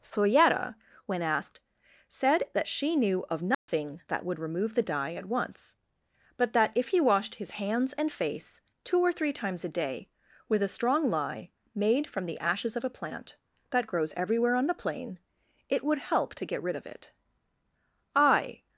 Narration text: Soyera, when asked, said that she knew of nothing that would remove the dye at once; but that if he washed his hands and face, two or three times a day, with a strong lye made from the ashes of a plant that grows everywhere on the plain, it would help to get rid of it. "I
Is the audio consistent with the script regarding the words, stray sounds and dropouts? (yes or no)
no